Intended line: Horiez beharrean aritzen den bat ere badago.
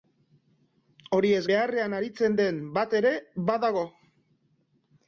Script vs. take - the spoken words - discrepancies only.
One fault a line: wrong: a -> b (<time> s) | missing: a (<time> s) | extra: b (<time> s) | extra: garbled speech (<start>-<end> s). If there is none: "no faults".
no faults